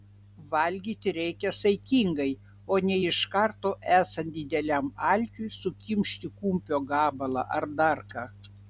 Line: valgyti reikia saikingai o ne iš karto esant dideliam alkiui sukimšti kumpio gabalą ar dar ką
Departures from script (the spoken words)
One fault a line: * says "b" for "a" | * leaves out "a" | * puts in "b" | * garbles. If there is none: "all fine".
all fine